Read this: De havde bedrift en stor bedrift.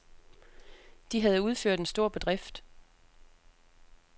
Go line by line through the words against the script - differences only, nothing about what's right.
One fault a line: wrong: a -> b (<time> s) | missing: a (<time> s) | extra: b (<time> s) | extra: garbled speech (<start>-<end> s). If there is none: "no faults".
wrong: bedrift -> udført (1.4 s)